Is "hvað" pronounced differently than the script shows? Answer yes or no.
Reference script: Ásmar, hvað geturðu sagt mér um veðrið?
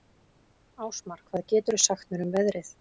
no